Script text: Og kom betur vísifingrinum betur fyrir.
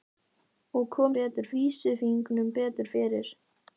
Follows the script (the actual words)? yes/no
yes